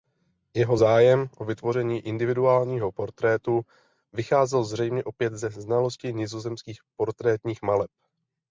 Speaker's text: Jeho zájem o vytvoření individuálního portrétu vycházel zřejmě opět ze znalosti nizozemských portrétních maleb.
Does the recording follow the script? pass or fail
pass